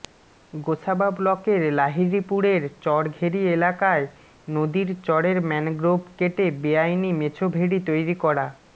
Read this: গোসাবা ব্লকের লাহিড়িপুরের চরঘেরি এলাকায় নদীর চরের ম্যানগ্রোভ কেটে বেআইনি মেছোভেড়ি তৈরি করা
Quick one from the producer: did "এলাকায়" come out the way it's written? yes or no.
yes